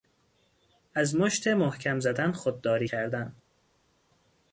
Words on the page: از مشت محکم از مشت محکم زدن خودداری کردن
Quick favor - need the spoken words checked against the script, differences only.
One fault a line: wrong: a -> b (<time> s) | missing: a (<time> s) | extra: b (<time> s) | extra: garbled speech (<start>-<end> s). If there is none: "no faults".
missing: از مشت محکم (2.0 s)